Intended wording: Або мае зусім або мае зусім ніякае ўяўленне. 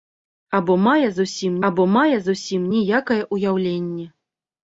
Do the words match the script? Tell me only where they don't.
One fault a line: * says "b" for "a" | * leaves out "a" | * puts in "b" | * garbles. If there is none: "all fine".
all fine